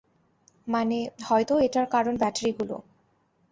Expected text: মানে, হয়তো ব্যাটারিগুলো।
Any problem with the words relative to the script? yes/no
yes